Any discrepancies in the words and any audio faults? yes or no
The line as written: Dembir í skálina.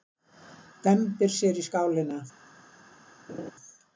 yes